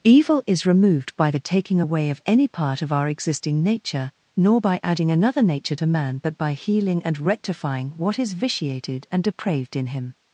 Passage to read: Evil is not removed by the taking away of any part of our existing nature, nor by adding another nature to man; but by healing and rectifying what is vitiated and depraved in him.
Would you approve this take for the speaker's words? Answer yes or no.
no